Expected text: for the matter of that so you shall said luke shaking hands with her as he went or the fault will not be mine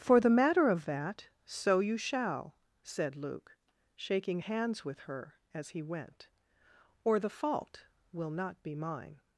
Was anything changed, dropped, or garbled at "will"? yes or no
no